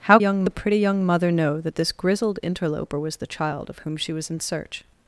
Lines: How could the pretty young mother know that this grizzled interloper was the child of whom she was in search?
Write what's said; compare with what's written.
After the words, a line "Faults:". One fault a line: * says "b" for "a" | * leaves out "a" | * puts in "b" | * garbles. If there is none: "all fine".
How young the pretty young mother know that this grizzled interloper was the child of whom she was in search?
Faults:
* says "young" for "could"